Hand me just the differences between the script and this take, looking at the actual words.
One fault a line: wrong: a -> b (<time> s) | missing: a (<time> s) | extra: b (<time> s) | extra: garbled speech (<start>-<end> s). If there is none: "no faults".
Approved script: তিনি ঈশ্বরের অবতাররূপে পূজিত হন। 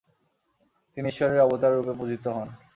no faults